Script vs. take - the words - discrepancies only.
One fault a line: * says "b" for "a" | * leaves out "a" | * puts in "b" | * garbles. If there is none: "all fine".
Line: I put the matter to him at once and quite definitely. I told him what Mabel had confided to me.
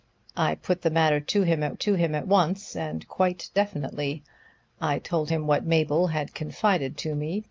* puts in "to him at"